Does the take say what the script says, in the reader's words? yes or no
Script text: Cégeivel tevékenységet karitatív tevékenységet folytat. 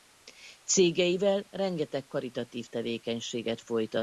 no